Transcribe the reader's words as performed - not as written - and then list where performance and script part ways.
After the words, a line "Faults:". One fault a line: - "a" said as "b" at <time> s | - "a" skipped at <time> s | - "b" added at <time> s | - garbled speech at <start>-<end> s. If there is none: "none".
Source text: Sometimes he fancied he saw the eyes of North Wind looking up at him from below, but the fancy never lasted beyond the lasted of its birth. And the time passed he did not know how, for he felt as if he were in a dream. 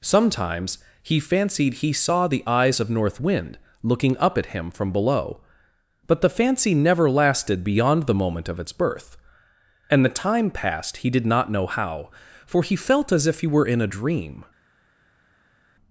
Sometimes he fancied he saw the eyes of North Wind looking up at him from below, but the fancy never lasted beyond the moment of its birth. And the time passed he did not know how, for he felt as if he were in a dream.
Faults:
- "lasted" said as "moment" at 8.1 s